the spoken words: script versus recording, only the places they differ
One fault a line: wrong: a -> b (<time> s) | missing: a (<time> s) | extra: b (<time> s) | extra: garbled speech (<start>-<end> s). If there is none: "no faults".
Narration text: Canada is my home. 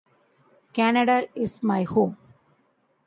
no faults